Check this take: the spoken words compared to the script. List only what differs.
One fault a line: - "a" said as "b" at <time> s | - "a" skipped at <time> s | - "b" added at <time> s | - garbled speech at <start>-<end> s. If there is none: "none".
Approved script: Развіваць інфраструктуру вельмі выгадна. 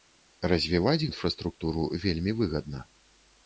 none